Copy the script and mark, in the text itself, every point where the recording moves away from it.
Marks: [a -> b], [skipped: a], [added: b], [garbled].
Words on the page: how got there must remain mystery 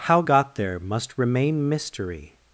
how got there must remain mystery